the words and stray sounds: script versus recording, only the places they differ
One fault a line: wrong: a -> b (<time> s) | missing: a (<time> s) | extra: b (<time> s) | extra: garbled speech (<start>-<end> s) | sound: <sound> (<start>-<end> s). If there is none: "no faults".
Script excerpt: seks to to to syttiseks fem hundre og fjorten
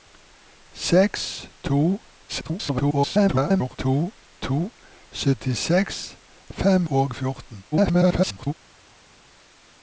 extra: garbled speech (2.3-3.8 s)
missing: hundre (6.9 s)
extra: garbled speech (7.7-8.5 s)